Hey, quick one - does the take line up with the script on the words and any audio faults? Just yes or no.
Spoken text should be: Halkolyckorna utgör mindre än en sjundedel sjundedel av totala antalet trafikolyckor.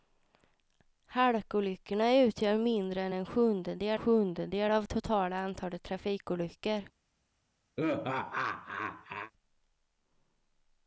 no